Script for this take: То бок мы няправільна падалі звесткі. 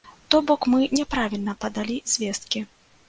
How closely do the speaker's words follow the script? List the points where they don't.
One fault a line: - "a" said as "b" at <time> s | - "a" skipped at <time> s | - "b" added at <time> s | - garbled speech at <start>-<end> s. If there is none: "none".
none